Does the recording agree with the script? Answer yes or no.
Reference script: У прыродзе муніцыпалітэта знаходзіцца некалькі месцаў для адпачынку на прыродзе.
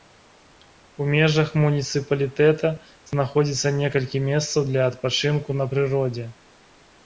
no